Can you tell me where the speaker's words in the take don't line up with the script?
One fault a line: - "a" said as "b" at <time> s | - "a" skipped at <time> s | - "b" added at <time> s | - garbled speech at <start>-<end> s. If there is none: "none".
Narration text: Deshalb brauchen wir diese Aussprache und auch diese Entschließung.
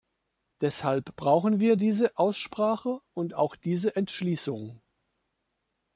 none